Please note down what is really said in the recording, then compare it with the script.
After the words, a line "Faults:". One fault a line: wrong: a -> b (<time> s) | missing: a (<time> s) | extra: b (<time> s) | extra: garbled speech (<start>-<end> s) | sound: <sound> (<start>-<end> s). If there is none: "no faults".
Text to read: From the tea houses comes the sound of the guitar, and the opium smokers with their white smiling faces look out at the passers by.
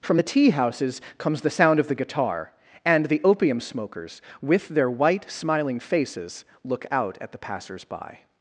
From the tea houses comes the sound of the guitar, and the opium smokers with their white smiling faces look out at the passers by.
Faults:
no faults